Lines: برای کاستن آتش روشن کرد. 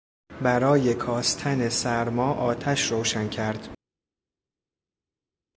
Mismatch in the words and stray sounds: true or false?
true